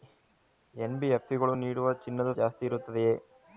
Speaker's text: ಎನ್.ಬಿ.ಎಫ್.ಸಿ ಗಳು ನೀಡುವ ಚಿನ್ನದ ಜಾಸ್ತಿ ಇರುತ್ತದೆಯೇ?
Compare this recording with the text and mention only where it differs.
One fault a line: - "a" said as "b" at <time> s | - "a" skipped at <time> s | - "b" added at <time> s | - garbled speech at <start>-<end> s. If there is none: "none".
none